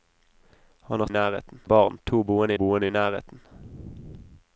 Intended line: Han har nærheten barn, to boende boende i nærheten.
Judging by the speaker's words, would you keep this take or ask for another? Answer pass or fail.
pass